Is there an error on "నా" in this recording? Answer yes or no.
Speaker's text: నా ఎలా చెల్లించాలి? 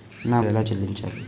no